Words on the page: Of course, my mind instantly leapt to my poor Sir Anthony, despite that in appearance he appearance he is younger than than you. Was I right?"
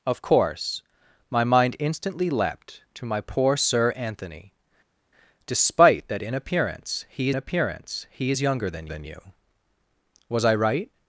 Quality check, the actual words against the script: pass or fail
pass